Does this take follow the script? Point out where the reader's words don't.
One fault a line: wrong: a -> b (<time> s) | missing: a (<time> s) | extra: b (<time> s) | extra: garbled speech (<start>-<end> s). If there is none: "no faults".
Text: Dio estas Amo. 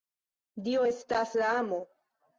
extra: la (1.4 s)